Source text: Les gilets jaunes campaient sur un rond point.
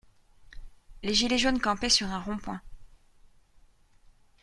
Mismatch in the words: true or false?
false